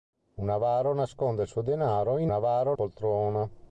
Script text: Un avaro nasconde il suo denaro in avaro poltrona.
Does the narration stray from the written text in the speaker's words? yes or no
no